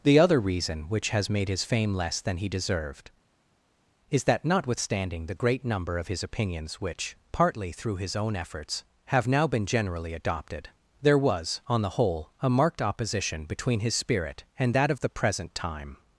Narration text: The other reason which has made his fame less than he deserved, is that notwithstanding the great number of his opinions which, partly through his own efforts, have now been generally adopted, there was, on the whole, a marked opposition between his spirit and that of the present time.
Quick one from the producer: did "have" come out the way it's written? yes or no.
yes